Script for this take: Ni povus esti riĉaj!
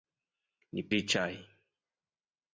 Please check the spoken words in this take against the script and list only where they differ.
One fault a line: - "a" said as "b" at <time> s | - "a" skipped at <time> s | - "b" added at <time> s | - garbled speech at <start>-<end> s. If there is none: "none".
- "povus esti" skipped at 0.8 s